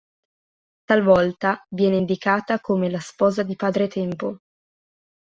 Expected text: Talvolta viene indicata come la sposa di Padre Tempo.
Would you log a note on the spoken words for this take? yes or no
no